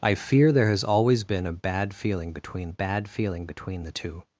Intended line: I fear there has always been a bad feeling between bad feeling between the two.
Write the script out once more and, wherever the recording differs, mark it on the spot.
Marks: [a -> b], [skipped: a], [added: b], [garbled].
I fear there has always been a bad feeling between bad feeling between the two.